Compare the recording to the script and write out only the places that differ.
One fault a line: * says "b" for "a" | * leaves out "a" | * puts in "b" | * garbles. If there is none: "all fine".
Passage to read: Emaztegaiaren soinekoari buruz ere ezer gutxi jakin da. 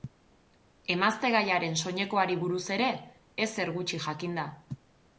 all fine